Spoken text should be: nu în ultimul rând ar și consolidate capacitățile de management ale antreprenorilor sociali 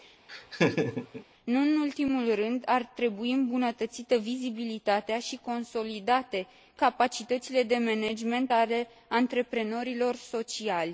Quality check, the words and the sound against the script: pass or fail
fail